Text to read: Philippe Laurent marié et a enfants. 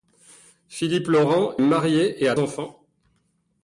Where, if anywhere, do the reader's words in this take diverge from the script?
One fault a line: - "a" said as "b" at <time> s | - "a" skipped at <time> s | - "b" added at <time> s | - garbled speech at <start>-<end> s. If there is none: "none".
none